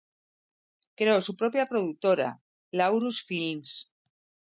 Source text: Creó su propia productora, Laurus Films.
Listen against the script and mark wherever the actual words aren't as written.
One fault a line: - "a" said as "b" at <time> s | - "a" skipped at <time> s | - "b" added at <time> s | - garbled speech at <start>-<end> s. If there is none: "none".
none